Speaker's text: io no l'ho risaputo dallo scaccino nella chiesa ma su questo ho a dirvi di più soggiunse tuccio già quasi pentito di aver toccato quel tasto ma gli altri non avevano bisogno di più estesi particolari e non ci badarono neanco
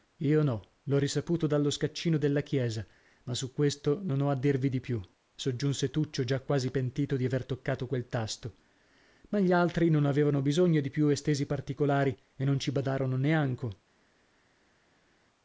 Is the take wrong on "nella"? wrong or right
wrong